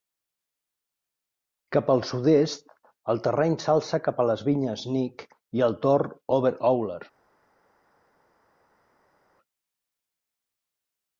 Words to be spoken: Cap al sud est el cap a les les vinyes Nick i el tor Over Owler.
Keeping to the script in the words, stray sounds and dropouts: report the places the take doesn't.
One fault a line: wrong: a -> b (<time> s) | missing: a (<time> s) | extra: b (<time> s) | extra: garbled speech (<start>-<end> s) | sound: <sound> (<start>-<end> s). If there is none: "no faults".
extra: terreny s'alça (3.3 s)
missing: les (4.4 s)